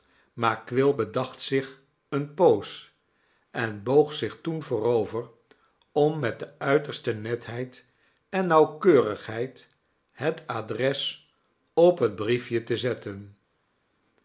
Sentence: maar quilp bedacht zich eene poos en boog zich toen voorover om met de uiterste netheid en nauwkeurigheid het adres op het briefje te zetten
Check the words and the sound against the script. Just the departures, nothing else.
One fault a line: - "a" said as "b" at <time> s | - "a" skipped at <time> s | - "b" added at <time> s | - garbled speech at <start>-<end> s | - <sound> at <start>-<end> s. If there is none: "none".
none